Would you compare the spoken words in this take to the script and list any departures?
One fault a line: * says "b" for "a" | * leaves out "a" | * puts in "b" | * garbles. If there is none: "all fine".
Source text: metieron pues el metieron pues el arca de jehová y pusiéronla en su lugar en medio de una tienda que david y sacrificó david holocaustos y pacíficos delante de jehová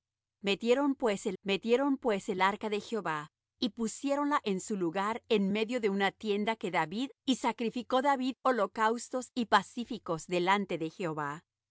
all fine